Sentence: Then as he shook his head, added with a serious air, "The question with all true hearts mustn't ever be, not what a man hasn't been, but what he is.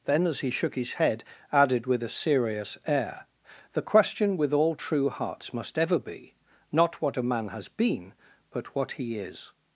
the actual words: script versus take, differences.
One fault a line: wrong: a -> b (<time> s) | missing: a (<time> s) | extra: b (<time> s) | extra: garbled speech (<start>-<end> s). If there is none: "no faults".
wrong: mustn't -> must (5.5 s)
wrong: hasn't -> has (7.5 s)